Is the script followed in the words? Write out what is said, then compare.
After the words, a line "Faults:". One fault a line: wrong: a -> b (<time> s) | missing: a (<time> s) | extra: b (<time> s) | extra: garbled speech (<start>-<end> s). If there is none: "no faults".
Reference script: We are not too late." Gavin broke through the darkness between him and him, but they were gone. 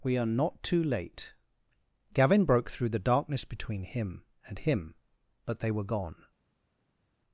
We are not too late." Gavin broke through the darkness between him and him, but they were gone.
Faults:
no faults